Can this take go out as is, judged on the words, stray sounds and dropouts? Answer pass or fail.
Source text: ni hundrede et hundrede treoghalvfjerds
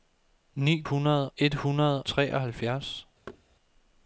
fail